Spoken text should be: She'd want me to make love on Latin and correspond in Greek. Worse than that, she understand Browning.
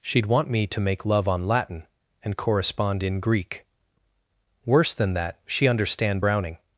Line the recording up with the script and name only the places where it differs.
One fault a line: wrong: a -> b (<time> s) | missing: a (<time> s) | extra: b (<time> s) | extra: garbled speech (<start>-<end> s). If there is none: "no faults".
no faults